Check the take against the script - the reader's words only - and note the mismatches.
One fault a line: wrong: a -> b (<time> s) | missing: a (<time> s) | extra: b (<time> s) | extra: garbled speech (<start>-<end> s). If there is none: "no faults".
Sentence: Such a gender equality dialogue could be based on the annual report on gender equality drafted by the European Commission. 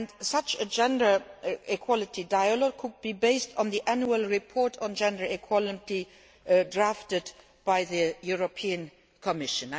no faults